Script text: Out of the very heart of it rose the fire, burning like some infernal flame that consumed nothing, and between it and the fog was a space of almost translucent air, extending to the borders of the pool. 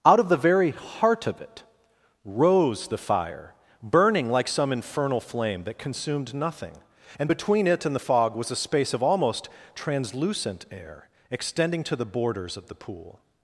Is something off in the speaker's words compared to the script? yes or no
no